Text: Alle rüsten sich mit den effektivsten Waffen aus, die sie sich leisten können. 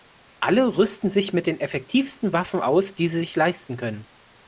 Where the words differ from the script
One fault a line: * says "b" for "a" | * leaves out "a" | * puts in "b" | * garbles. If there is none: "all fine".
all fine